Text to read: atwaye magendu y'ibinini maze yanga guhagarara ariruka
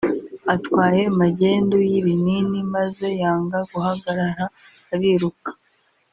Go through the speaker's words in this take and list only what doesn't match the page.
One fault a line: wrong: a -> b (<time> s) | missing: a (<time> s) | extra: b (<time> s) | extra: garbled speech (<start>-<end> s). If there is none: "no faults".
no faults